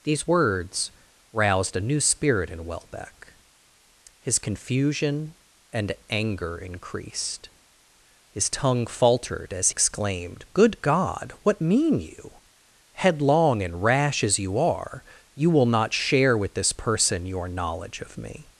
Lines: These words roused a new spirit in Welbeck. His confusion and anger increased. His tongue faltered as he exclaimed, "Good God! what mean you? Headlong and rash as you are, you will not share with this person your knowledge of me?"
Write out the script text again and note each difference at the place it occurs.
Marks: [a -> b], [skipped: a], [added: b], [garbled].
These words roused a new spirit in Welbeck. His confusion and anger increased. His tongue faltered as [skipped: he] exclaimed, "Good God! what mean you? Headlong and rash as you are, you will not share with this person your knowledge of me?"